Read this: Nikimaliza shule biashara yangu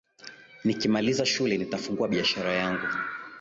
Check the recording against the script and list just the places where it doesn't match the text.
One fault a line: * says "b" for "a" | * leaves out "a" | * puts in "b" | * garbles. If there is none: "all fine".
* puts in "nitafungua"